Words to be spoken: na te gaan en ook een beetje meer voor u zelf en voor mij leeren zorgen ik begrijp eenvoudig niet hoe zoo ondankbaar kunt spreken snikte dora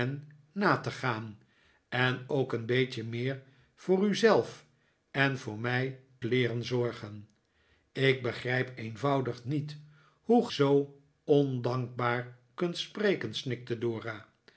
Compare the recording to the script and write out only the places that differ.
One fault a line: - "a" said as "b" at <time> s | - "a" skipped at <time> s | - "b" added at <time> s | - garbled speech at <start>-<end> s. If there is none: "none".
none